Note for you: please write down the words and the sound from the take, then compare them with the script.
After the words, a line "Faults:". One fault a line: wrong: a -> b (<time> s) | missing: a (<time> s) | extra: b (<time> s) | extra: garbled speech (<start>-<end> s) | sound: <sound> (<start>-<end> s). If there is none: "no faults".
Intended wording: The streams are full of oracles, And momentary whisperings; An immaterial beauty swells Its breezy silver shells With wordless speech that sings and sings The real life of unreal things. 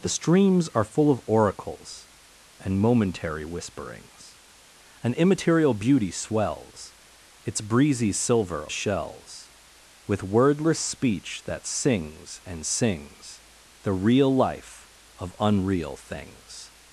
The streams are full of oracles, And momentary whisperings; An immaterial beauty swells Its breezy silver shells With wordless speech that sings and sings The real life of unreal things.
Faults:
no faults